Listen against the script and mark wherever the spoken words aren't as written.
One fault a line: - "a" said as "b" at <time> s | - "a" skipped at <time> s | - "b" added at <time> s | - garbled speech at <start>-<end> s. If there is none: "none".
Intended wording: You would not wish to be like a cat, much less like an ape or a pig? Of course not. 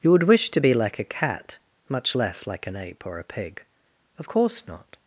- "not" skipped at 0.2 s